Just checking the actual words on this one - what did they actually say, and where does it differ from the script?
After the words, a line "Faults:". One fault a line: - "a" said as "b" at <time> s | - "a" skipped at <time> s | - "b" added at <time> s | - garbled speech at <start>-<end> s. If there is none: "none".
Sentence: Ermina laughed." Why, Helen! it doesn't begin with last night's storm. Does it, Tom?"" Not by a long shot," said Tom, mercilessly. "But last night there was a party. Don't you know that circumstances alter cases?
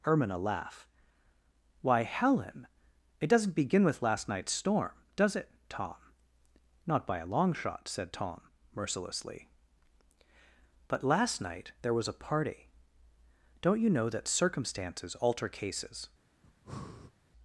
Ermina laugh." Why, Helen! it doesn't begin with last night's storm. Does it, Tom?"" Not by a long shot," said Tom, mercilessly. "But last night there was a party. Don't you know that circumstances alter cases?
Faults:
- "laughed" said as "laugh" at 0.4 s